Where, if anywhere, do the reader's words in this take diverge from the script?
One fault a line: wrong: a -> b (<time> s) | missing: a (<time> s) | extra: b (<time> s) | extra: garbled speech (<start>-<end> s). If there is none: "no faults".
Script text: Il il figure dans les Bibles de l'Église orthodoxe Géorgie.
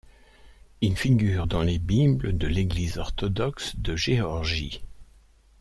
missing: il (1.0 s)
extra: de (3.8 s)